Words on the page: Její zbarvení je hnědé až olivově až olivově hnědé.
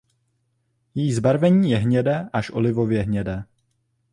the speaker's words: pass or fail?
fail